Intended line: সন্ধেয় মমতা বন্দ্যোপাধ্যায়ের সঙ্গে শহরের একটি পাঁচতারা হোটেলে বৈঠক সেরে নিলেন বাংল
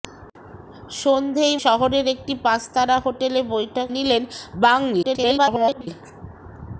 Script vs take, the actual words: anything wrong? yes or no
yes